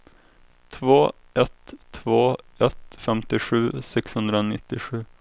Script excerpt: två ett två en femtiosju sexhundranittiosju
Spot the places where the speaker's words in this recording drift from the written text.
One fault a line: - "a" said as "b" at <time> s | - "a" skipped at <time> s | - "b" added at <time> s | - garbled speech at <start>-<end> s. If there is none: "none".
- "en" said as "ett" at 2.6 s